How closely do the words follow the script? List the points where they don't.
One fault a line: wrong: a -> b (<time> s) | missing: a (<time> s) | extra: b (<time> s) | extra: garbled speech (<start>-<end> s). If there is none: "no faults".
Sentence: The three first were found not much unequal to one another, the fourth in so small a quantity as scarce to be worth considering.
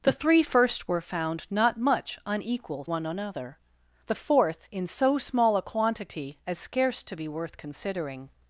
missing: to (2.9 s)